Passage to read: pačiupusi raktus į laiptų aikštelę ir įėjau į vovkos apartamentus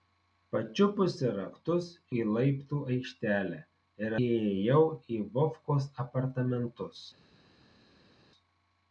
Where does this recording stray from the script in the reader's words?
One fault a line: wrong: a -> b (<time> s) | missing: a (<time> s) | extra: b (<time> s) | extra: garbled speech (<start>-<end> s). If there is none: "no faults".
no faults